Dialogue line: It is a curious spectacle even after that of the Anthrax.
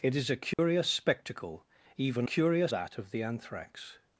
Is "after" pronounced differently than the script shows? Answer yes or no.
yes